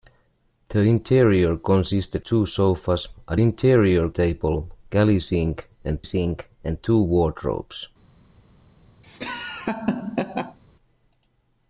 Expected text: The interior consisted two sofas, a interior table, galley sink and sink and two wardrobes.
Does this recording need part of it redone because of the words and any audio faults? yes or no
yes